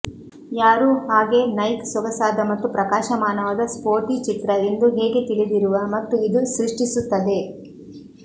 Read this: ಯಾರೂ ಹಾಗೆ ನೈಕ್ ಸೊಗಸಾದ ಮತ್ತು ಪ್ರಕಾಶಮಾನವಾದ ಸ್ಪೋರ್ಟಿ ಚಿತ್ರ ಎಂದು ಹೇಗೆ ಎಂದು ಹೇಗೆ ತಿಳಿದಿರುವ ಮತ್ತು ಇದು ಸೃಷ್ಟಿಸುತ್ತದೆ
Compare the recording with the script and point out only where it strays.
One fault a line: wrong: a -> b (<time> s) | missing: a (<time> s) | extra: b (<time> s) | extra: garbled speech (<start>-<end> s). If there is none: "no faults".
missing: ಎಂದು ಹೇಗೆ (5.2 s)